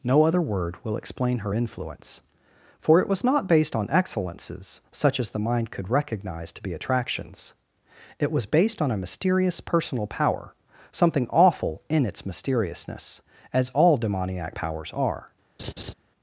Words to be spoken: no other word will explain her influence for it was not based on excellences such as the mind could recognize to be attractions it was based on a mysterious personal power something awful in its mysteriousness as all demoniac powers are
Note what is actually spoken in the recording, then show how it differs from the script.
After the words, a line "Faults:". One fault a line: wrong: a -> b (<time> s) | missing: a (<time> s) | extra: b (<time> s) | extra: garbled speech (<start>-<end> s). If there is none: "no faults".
no other word will explain her influence for it was not based on excellences such as the mind could recognize to be attractions it was based on a mysterious personal power something awful in its mysteriousness as all demoniac powers are
Faults:
no faults